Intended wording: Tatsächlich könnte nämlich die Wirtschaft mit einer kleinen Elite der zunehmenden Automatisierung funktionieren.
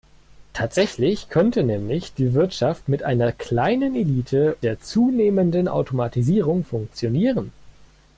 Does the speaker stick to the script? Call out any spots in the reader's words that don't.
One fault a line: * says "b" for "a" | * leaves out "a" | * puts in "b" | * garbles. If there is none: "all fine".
all fine